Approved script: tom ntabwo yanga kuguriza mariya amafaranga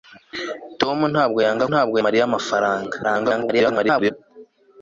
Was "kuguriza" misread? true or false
true